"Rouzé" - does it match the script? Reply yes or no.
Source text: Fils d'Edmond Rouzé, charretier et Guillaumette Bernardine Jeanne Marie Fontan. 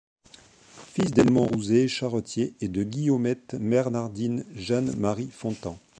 yes